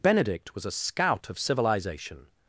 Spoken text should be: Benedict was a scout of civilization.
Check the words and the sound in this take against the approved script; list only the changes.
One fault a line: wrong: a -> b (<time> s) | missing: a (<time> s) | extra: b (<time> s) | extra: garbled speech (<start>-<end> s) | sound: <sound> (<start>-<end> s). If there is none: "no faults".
no faults